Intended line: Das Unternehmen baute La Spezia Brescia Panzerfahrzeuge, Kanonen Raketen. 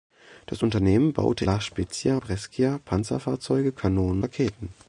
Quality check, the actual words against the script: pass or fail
pass